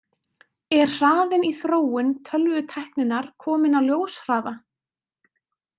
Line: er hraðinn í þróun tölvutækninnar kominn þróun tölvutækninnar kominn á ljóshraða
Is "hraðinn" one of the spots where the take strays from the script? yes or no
no